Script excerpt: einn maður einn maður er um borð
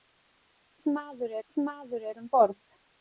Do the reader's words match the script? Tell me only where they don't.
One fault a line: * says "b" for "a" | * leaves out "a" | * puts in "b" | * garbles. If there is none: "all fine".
all fine